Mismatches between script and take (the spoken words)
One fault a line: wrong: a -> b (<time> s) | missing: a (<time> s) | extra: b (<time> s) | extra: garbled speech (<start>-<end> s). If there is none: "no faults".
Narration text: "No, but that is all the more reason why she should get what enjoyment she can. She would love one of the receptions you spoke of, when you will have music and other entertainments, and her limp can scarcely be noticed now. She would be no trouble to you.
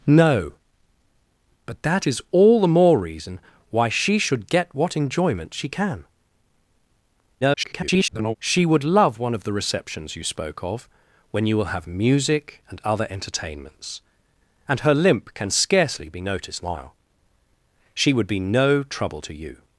extra: garbled speech (7.4-8.4 s)